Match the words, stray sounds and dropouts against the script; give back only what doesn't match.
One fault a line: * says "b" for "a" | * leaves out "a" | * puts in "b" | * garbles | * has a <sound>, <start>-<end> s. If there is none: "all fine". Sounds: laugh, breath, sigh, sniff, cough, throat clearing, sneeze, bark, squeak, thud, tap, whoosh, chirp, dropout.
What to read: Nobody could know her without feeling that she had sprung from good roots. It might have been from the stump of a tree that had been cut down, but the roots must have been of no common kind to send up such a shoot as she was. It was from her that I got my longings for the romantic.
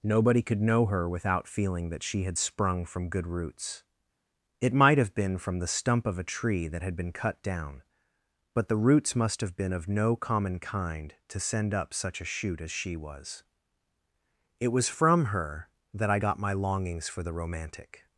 all fine